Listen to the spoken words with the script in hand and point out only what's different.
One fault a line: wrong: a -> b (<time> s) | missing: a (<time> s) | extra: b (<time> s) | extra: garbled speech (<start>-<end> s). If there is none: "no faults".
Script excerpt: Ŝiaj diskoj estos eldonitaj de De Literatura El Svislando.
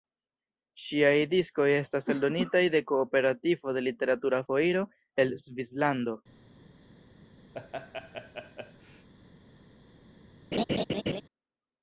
wrong: estos -> estas (1.7 s)
extra: Kooperativo (2.9 s)
extra: Foiro (4.4 s)